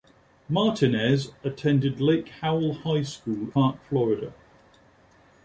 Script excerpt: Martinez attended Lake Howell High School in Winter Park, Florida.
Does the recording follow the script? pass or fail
fail